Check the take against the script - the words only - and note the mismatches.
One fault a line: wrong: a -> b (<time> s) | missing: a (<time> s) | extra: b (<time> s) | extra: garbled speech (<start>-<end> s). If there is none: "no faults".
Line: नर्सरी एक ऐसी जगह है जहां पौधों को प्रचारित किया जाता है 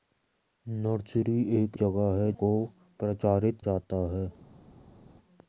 missing: ऐसी (1.8 s)
missing: जहां पौधों (2.3 s)
missing: किया (3.6 s)